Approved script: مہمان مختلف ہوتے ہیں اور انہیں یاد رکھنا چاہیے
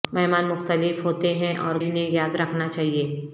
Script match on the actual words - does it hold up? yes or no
yes